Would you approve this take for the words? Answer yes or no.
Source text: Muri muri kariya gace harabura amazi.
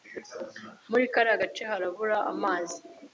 no